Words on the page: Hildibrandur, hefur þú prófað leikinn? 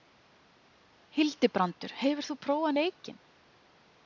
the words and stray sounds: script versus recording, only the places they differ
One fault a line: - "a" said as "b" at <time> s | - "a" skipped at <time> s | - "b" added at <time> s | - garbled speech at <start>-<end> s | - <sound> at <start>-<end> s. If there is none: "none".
none